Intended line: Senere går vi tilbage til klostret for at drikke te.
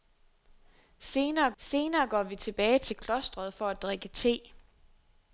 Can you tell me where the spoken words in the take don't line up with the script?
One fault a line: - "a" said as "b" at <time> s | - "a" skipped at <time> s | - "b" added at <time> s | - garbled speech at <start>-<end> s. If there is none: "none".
- "senere" added at 1.6 s